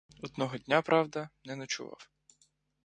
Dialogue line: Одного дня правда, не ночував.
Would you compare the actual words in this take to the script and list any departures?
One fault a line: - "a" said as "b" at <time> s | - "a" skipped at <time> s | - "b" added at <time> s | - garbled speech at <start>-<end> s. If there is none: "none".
none